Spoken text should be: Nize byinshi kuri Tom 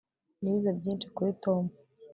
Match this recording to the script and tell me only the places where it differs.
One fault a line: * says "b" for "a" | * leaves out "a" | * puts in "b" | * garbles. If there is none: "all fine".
all fine